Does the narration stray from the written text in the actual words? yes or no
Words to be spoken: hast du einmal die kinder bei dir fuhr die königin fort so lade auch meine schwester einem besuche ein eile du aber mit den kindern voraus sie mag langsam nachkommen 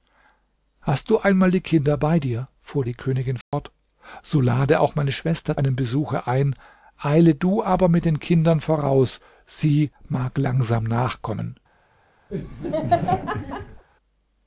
no